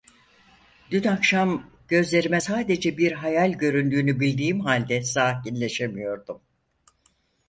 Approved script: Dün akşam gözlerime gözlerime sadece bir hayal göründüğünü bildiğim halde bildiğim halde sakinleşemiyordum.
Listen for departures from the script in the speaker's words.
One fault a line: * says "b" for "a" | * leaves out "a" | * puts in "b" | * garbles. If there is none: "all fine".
* leaves out "gözlerime"
* leaves out "bildiğim halde"